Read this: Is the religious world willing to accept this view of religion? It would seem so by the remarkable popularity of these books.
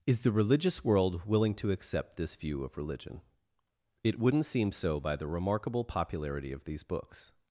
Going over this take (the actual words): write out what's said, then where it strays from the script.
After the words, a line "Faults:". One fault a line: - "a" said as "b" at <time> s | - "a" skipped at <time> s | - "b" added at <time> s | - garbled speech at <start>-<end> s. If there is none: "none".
Is the religious world willing to accept this view of religion? It wouldn't seem so by the remarkable popularity of these books.
Faults:
- "would" said as "wouldn't" at 4.2 s